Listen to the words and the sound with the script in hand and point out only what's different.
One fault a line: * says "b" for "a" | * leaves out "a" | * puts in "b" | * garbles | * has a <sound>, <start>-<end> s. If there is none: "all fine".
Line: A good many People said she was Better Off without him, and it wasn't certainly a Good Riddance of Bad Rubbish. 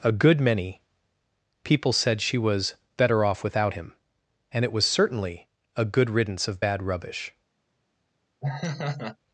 * says "was" for "wasn't"
* has a laugh, 8.4-9.2 s